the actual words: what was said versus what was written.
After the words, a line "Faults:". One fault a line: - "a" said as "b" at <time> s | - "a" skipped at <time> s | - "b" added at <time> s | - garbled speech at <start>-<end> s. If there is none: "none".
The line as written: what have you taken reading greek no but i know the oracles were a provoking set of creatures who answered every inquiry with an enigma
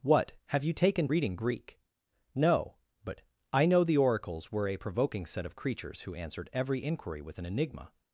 what have you taken reading greek no but i know the oracles were a provoking set of creatures who answered every inquiry with an enigma
Faults:
none